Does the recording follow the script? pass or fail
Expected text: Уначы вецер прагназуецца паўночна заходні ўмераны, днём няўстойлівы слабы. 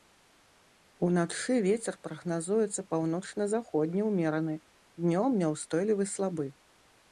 pass